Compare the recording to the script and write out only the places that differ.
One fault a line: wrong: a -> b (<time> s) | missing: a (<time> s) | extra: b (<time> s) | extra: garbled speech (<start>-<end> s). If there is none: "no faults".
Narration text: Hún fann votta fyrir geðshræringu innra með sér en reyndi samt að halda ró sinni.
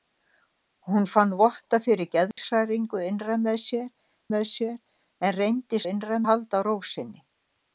extra: með sér (4.3 s)
wrong: samt -> innra (5.9 s)